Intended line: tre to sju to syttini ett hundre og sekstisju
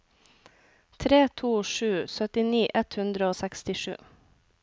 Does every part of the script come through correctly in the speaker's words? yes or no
no